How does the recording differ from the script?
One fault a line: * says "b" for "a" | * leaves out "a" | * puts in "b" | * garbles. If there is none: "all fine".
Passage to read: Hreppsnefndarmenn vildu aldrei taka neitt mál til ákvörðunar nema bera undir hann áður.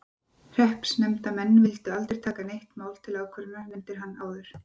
* leaves out "nema bera"